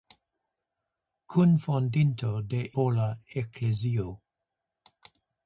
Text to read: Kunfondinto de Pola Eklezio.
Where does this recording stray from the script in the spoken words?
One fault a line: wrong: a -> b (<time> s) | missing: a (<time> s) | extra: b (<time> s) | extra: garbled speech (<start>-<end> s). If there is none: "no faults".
no faults